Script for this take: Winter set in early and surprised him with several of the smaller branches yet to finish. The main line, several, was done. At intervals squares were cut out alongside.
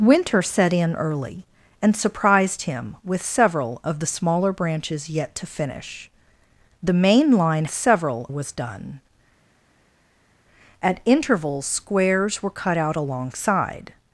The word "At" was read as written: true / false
true